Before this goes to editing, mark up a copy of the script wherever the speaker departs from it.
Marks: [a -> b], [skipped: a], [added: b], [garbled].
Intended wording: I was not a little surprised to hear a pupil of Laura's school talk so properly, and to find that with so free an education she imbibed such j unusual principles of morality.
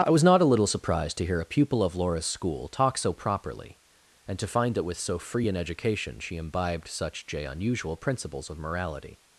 I was not a little surprised to hear a pupil of Laura's school talk so properly, and to find that with so free an education she imbibed such j unusual principles of morality.